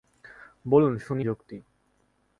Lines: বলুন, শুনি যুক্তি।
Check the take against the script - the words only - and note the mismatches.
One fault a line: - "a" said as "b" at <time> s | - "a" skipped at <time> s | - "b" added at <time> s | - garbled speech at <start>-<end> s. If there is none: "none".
none